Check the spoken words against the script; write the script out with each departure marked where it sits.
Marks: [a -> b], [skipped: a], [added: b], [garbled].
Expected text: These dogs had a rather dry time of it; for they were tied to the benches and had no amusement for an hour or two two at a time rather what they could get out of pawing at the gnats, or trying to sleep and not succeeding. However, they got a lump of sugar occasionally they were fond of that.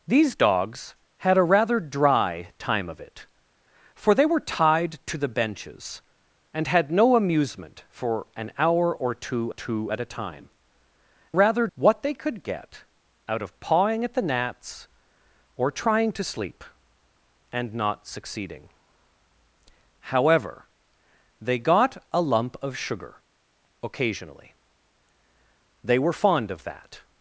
These dogs had a rather dry time of it; for they were tied to the benches and had no amusement for an hour or two two at a time rather what they could get out of pawing at the gnats, or trying to sleep and not succeeding. However, they got a lump of sugar occasionally they were fond of that.